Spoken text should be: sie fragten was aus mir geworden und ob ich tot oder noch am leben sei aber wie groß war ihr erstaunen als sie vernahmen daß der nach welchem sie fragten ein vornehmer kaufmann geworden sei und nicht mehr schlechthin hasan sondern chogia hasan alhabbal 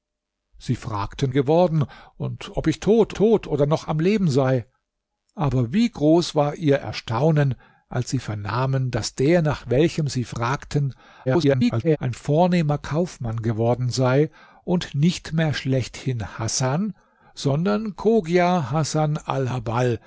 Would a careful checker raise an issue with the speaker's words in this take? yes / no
yes